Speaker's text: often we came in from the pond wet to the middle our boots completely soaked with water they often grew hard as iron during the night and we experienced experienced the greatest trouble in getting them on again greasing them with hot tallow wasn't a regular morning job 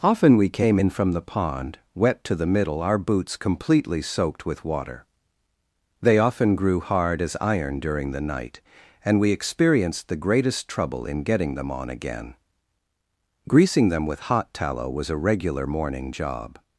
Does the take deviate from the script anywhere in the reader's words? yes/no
yes